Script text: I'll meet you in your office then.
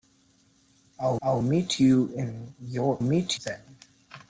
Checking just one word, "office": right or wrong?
wrong